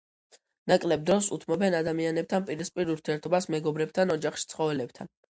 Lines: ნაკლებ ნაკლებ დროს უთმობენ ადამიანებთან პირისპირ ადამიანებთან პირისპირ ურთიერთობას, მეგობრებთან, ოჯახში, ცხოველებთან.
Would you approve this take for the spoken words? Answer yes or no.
no